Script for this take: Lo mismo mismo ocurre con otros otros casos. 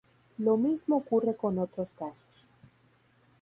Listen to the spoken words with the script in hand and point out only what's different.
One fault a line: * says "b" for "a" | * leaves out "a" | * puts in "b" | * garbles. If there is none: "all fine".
* leaves out "mismo"
* leaves out "otros"